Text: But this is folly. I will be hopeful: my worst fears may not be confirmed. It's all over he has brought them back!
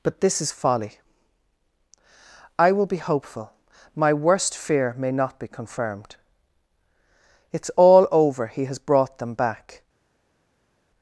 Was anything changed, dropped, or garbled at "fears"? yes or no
yes